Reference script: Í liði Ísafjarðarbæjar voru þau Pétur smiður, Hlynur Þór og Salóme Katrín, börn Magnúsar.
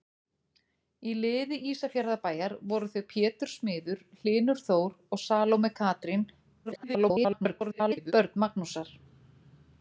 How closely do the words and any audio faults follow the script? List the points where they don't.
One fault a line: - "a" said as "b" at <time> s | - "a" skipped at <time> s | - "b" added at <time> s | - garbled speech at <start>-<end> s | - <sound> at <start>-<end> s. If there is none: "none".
- garbled speech at 6.6-8.1 s